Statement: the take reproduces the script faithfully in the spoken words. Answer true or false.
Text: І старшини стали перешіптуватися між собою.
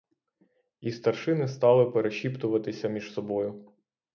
true